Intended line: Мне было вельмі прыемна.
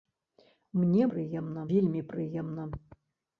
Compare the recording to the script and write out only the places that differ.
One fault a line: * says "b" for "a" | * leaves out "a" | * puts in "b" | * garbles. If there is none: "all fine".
* says "прыемна" for "было"